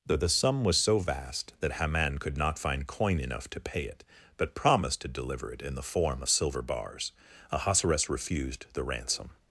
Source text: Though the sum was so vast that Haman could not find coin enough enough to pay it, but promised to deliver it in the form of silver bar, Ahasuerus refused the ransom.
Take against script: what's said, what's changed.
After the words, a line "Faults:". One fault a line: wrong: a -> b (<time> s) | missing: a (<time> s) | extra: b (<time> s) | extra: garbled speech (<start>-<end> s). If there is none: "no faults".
Though the sum was so vast that Haman could not find coin enough to pay it, but promised to deliver it in the form of silver bars, Ahasuerus refused the ransom.
Faults:
missing: enough (3.5 s)
wrong: bar -> bars (6.6 s)